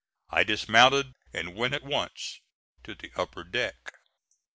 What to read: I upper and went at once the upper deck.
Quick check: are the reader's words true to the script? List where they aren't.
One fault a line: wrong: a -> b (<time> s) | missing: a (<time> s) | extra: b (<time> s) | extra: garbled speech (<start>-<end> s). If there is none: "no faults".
wrong: upper -> dismounted (0.4 s)
extra: to (2.8 s)